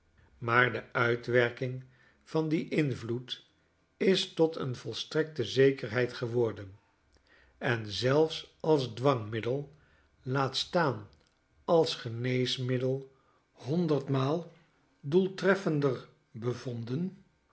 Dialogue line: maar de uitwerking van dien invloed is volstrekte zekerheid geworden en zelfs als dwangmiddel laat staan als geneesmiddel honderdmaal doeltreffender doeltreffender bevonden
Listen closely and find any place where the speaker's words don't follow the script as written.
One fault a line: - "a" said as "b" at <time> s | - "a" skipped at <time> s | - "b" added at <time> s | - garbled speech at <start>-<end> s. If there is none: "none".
- "tot een" added at 4.3 s
- "doeltreffender" skipped at 16.1 s